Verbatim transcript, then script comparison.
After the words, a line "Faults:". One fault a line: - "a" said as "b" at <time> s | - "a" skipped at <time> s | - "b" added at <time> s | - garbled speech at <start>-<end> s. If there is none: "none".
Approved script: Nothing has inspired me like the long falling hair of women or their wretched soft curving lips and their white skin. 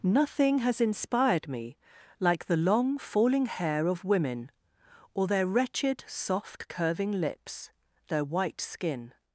Nothing has inspired me like the long falling hair of women or their wretched soft curving lips their white skin.
Faults:
- "and" skipped at 7.7 s